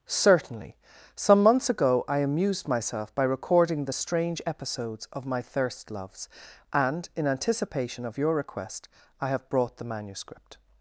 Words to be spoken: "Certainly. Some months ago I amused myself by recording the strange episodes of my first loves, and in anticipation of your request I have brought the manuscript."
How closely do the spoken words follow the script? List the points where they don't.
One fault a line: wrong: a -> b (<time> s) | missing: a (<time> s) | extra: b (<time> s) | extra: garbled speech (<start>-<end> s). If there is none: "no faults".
wrong: first -> thirst (5.4 s)